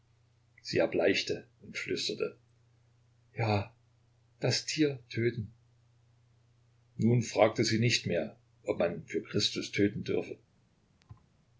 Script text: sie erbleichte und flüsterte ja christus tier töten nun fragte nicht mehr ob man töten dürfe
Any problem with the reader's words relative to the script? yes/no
yes